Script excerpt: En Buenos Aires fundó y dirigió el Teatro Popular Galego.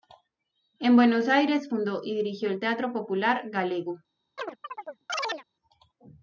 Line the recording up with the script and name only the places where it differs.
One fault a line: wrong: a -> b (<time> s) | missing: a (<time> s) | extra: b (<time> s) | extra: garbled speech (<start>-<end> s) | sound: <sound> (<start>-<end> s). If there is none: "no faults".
sound: chirp (4.4-5.4 s)